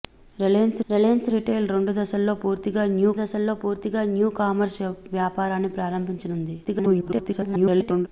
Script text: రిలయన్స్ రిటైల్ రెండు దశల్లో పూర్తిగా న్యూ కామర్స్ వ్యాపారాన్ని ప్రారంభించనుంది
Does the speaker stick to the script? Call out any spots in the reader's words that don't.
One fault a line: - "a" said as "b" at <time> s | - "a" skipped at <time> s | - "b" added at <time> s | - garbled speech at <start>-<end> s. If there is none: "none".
- "రిలయన్స్" added at 0.9 s
- "దశల్లో పూర్తిగా న్యూ" added at 3.2 s
- garbled speech at 6.6-8.1 s